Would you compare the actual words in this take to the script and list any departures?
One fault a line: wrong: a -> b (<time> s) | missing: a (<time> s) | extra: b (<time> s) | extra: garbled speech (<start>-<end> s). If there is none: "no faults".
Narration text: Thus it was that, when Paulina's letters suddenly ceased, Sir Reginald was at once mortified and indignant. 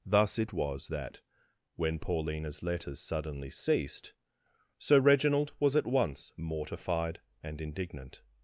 no faults